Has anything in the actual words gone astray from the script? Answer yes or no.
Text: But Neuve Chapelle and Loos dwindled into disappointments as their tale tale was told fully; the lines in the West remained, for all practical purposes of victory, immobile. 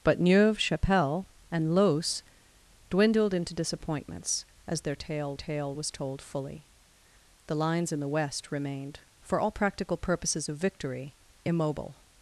no